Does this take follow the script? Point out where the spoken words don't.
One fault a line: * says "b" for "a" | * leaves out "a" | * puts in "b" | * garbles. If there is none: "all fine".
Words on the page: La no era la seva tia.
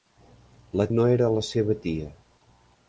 all fine